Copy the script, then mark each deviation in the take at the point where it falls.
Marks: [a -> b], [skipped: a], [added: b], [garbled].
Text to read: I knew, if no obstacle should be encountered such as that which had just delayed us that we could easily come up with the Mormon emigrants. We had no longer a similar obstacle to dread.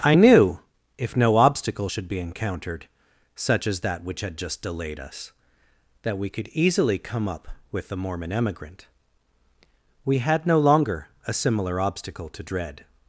I knew, if no obstacle should be encountered such as that which had just delayed us that we could easily come up with the Mormon [emigrants. -> emigrant] We had no longer a similar obstacle to dread.